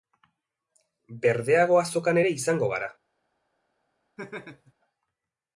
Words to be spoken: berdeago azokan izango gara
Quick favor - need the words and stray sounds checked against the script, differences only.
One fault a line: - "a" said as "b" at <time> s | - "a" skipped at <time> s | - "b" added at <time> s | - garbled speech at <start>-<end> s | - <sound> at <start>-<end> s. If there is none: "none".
- "ere" added at 2.2 s
- laugh at 4.2-4.7 s